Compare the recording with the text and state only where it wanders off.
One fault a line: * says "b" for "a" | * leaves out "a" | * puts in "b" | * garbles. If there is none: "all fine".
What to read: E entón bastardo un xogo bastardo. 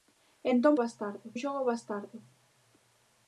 all fine